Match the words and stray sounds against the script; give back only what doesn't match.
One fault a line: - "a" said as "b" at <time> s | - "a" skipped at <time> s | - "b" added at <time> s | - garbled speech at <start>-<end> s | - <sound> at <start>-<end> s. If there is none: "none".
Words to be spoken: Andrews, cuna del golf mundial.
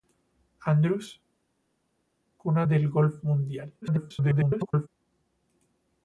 - garbled speech at 3.8-4.9 s